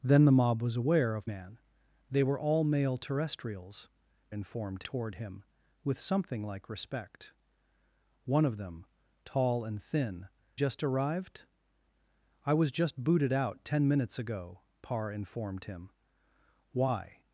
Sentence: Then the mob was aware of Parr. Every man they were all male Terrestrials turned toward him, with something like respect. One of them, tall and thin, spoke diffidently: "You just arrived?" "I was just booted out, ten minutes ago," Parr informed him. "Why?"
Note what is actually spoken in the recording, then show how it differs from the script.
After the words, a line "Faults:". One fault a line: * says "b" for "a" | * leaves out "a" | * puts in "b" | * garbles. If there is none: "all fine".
Then the mob was aware of Man they were all male Terrestrials informed toward him, with something like respect. One of them, tall and thin, just arrived?" "I was just booted out, ten minutes ago," Parr informed him. "Why?"
Faults:
* leaves out "Parr Every"
* says "informed" for "turned"
* leaves out "spoke diffidently You"